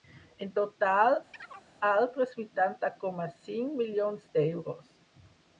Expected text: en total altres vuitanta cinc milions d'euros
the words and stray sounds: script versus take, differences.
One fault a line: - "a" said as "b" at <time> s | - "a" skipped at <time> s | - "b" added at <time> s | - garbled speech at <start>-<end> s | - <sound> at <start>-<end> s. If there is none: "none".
- chirp at 1.3-1.7 s
- "coma" added at 3.0 s